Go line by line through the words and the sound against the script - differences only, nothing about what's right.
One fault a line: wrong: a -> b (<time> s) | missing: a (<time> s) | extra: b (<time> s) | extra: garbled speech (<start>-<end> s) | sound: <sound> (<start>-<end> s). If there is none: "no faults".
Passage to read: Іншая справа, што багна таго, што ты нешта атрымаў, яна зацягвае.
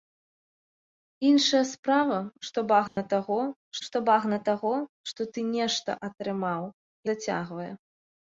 sound: dropout (2.9-3.0 s)
extra: багна таго што (4.1 s)
missing: яна (6.7 s)